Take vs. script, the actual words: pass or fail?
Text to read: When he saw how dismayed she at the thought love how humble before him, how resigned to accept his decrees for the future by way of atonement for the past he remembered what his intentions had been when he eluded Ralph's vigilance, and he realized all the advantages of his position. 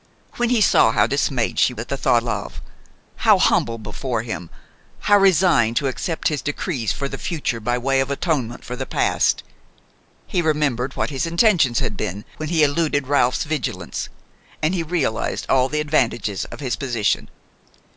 pass